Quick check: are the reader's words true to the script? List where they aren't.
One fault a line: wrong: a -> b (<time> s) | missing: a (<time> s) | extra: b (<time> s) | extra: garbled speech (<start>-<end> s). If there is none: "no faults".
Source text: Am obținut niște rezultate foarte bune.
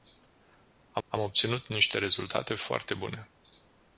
extra: am (1.1 s)